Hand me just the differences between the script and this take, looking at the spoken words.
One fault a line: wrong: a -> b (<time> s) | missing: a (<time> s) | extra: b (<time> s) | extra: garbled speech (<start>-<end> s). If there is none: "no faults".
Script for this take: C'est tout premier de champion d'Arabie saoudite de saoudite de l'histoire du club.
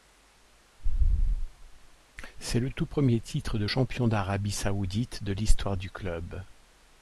extra: le (2.6 s)
extra: titre (3.2 s)
missing: saoudite de (5.3 s)